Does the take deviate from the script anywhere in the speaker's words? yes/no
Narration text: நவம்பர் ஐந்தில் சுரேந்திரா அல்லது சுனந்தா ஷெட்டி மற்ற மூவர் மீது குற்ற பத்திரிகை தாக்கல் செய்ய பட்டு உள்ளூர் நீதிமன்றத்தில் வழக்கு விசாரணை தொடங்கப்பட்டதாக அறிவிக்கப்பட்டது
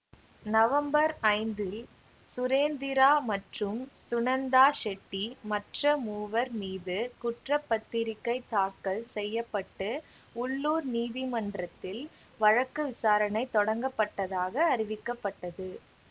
yes